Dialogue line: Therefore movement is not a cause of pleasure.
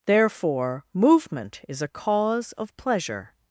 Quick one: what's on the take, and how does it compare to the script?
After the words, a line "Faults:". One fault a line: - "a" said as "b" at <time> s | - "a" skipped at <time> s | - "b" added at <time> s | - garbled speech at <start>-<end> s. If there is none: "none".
Therefore movement is a cause of pleasure.
Faults:
- "not" skipped at 1.8 s